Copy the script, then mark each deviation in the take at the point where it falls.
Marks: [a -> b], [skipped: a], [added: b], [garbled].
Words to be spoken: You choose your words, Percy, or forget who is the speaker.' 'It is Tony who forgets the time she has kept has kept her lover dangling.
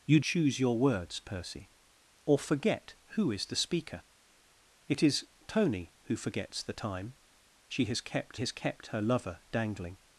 You choose your words, Percy, or forget who is the speaker.' 'It is Tony who forgets the time she has kept has kept her lover dangling.